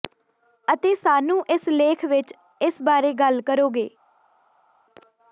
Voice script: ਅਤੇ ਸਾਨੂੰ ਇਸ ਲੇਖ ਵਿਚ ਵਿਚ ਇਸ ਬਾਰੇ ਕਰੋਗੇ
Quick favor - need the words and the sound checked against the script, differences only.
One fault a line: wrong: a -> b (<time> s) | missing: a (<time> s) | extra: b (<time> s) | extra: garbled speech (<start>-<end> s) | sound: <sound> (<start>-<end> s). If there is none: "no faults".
missing: ਵਿਚ (2.3 s)
extra: ਗੱਲ (3.1 s)